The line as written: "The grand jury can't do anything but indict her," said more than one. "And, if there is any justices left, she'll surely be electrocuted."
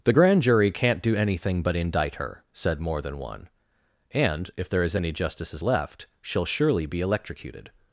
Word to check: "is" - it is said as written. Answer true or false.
true